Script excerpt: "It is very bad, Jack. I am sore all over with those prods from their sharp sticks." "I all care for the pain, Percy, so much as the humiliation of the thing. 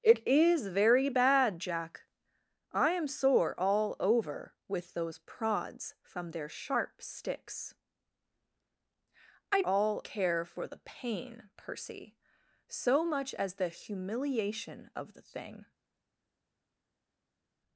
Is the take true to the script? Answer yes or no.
yes